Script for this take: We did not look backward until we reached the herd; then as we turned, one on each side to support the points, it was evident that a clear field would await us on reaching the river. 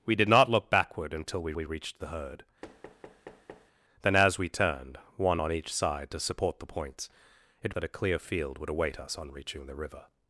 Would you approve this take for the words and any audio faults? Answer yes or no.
no